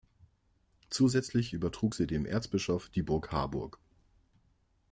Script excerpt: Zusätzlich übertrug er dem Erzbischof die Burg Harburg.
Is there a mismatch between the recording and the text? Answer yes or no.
yes